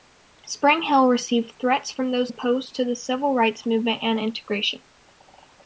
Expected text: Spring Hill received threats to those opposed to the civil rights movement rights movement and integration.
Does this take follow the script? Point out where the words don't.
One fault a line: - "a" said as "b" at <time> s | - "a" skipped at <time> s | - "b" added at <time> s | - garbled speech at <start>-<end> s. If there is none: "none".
- "to" said as "from" at 1.9 s
- "rights movement" skipped at 4.0 s